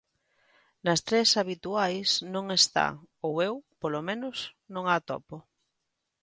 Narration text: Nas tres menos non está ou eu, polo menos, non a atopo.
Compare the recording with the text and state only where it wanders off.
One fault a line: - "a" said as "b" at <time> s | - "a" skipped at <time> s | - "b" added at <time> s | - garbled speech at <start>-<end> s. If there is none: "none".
- "menos" said as "habituais" at 1.4 s